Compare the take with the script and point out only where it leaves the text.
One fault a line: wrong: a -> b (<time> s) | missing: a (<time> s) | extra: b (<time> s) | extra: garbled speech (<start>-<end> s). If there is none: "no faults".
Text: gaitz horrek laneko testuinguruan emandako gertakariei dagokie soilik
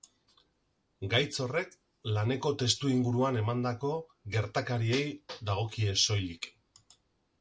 no faults